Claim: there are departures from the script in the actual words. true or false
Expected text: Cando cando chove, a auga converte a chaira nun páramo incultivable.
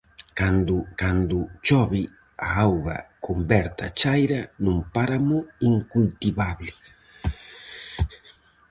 false